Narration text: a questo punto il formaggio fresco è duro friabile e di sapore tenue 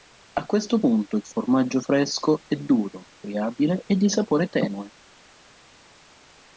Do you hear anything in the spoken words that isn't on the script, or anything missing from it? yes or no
no